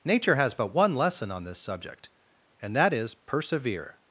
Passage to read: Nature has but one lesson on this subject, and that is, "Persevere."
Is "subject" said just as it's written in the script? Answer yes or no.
yes